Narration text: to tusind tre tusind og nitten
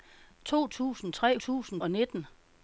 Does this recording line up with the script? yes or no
yes